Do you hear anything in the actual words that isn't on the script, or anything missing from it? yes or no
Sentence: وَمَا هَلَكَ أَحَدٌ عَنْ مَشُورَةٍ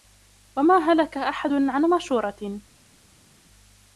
no